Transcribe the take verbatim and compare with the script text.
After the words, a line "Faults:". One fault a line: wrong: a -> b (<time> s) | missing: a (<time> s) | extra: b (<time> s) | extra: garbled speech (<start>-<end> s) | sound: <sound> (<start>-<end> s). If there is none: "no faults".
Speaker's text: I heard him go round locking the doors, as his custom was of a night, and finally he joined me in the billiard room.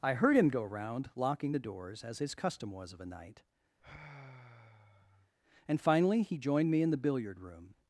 I heard him go round locking the doors, as his custom was of a night, and finally he joined me in the billiard room.
Faults:
sound: sigh (3.8-5.3 s)